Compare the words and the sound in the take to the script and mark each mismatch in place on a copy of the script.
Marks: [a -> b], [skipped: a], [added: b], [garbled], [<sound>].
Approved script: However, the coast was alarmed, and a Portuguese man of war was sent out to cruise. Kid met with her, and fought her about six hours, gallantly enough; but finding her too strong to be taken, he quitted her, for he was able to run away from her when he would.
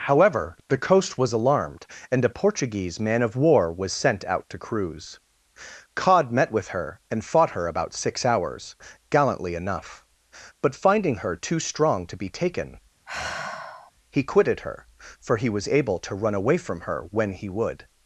However, the coast was alarmed, and a Portuguese man of war was sent out to cruise. [Kid -> Cod] met with her, and fought her about six hours, gallantly enough; but finding her too strong to be taken, [sigh] he quitted her, for he was able to run away from her when he would.